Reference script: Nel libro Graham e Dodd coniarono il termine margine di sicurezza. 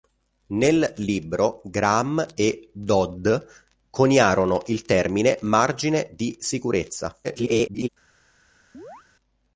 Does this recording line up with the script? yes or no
no